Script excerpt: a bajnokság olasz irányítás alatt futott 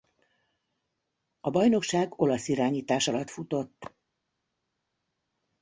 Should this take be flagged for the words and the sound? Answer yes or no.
no